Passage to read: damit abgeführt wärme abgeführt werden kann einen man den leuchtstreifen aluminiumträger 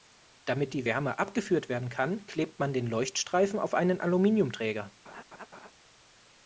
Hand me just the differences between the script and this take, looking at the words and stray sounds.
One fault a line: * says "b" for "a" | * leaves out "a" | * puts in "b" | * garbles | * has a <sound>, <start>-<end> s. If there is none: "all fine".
* says "die" for "abgeführt"
* says "klebt" for "einen"
* puts in "auf einen"
* has a laugh, 5.1-5.7 s